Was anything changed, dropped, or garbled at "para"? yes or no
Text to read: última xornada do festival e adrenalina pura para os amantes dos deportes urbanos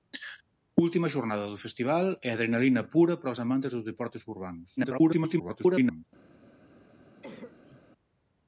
no